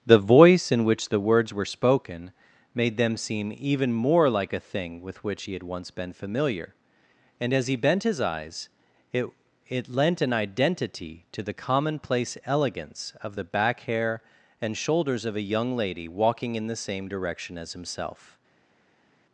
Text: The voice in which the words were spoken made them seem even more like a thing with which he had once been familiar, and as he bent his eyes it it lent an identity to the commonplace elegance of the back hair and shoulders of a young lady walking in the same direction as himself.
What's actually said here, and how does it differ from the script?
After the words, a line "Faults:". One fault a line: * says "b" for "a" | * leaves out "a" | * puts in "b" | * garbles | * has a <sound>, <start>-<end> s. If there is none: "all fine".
The voice in which the words were spoken made them seem even more like a thing with which he had once been familiar, and as he bent his eyes it it lent an identity to the commonplace elegance of the back hair and shoulders of a young lady walking in the same direction as himself.
Faults:
all fine